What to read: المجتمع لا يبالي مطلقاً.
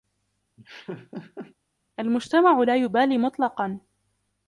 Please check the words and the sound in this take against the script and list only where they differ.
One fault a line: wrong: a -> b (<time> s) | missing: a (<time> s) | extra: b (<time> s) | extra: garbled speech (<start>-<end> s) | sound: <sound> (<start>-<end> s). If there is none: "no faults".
sound: laugh (0.6-1.6 s)